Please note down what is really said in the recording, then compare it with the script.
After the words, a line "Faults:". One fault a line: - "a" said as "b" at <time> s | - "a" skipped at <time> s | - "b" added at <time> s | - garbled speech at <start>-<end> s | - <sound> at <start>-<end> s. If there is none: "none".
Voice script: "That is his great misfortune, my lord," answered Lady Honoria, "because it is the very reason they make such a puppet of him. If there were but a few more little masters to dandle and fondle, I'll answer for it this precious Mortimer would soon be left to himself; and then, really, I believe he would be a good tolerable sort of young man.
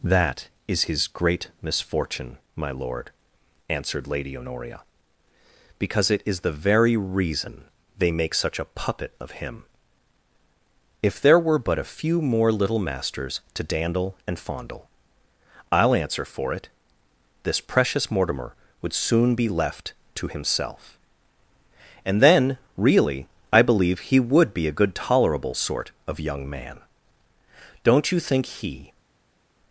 "That is his great misfortune, my lord," answered Lady Honoria, "because it is the very reason they make such a puppet of him. If there were but a few more little masters to dandle and fondle, I'll answer for it this precious Mortimer would soon be left to himself; and then, really, I believe he would be a good tolerable sort of young man. Don't you think he
Faults:
- "Don't you think he" added at 27.8 s